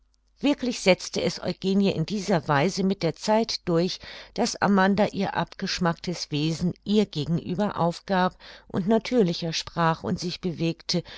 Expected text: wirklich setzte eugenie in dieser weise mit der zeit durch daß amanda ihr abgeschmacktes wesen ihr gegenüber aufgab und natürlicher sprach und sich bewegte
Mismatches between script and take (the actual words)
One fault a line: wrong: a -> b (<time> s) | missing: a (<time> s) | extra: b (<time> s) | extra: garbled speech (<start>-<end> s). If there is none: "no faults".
extra: es (1.2 s)